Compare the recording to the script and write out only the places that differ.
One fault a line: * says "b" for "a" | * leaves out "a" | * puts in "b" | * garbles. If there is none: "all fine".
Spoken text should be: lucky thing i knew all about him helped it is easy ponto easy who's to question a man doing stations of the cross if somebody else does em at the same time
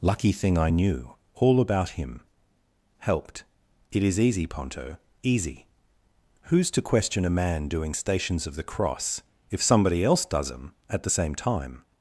all fine